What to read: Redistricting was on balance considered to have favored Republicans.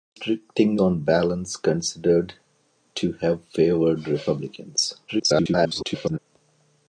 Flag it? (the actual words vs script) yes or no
yes